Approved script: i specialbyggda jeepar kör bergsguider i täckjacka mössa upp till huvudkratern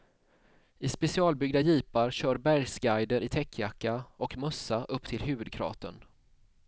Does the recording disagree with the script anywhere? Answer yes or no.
yes